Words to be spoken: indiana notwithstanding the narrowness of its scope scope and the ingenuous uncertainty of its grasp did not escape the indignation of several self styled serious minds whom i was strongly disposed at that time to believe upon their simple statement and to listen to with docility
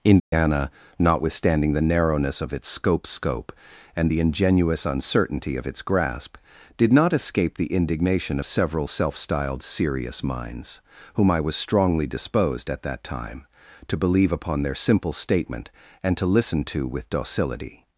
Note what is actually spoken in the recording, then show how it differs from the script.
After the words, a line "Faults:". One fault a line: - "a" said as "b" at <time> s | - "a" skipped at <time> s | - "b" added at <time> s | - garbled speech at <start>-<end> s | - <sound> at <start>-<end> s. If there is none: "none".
indiana notwithstanding the narrowness of its scope scope and the ingenuous uncertainty of its grasp did not escape the indignation of several self styled serious minds whom i was strongly disposed at that time to believe upon their simple statement and to listen to with docility
Faults:
- dropout at 0.2-0.3 s